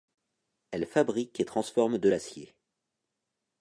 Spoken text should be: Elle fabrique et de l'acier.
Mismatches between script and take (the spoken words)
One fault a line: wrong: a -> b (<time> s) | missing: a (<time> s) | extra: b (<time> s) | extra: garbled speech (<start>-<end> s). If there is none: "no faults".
extra: transforme (1.4 s)